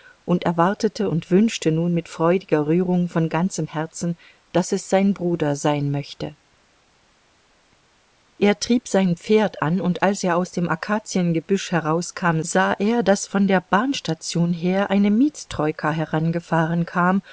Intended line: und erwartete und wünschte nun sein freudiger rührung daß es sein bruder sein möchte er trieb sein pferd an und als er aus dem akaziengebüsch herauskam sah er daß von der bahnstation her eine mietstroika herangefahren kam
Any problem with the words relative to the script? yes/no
yes